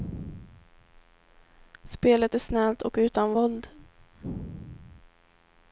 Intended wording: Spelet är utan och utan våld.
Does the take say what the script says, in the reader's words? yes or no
no